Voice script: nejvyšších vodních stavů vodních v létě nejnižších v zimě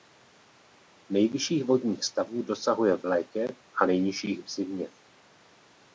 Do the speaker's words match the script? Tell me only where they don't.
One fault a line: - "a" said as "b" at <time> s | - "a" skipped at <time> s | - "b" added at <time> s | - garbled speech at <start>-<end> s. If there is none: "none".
- "vodních" said as "dosahuje" at 2.4 s
- "a" added at 3.8 s